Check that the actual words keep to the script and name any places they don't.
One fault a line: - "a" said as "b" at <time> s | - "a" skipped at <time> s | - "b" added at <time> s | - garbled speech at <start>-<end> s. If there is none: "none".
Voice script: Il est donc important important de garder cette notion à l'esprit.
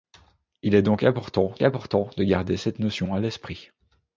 none